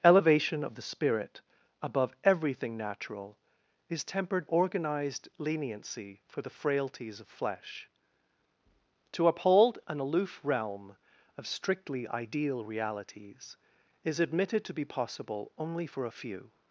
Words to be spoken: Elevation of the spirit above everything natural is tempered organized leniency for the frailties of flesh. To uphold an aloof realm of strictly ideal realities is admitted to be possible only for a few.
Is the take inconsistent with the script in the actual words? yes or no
no